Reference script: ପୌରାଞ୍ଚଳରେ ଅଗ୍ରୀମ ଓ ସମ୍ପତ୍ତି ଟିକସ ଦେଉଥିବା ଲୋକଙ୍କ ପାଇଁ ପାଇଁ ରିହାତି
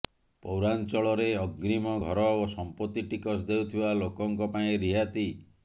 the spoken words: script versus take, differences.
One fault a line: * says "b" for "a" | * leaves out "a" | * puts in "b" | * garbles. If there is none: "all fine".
* puts in "ଘର"
* leaves out "ପାଇଁ"